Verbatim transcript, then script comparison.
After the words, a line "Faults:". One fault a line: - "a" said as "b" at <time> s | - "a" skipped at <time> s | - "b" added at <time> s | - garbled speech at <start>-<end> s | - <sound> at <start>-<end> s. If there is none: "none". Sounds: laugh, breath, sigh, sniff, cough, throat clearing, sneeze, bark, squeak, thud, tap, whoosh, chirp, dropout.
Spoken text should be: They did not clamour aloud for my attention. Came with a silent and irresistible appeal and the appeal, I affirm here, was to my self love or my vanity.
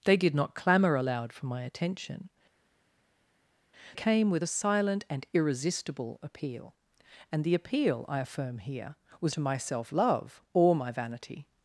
They did not clamour aloud for my attention. Came with a silent and irresistible appeal and the appeal, I affirm here, was to my self love or my vanity.
Faults:
none